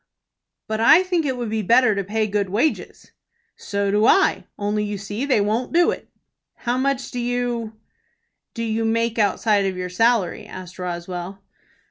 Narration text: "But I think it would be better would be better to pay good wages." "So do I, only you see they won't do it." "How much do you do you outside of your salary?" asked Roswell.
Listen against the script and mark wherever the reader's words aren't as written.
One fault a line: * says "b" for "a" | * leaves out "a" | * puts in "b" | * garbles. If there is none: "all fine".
* leaves out "would be better"
* puts in "make"